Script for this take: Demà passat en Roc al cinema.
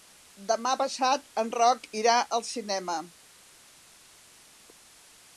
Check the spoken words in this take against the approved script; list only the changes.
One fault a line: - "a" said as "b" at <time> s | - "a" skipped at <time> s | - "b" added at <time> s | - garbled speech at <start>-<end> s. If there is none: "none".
- "irà" added at 2.0 s